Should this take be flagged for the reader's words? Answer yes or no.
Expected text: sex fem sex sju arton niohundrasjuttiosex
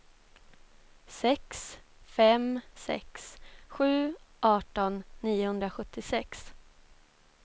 no